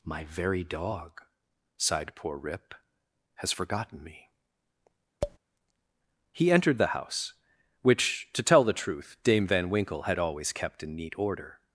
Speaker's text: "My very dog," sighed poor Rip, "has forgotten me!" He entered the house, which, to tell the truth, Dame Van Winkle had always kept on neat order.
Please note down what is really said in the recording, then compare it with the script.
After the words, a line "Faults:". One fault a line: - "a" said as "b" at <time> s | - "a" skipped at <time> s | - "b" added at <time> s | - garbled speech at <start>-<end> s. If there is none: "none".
"My very dog," sighed poor Rip, "has forgotten me!" He entered the house, which, to tell the truth, Dame Van Winkle had always kept in neat order.
Faults:
- "on" said as "in" at 10.8 s